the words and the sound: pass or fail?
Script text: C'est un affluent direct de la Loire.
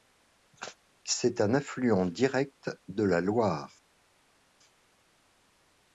pass